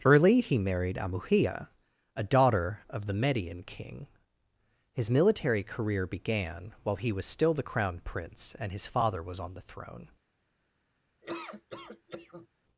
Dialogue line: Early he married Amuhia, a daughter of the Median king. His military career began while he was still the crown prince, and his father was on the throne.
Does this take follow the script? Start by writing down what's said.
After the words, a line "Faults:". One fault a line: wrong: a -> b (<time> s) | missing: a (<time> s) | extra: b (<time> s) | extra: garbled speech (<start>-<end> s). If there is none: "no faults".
Early he married Amuhia, a daughter of the Median king. His military career began while he was still the crown prince, and his father was on the throne.
Faults:
no faults